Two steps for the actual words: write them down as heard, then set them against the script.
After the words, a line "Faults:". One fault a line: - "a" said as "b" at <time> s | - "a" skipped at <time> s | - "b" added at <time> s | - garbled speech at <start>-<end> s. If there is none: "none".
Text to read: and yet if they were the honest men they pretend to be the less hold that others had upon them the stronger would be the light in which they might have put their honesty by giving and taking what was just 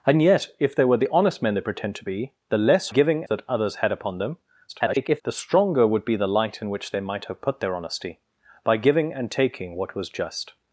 and yet if they were the honest men they pretend to be the less giving that others had upon them [garbled] the stronger would be the light in which they might have put their honesty by giving and taking what was just
Faults:
- "hold" said as "giving" at 2.9 s
- garbled speech at 4.7-5.2 s